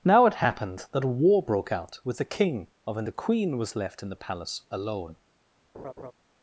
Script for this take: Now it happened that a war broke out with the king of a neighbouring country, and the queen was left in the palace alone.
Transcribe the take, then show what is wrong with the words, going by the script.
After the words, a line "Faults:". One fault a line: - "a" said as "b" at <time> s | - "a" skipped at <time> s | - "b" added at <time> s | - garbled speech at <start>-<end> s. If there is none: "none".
Now it happened that a war broke out with the king of a the queen was left in the palace alone.
Faults:
- "neighbouring country and" skipped at 3.0 s